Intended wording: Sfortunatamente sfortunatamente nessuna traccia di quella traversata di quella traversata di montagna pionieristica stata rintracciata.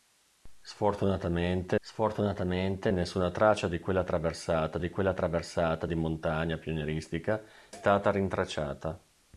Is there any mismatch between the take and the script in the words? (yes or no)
no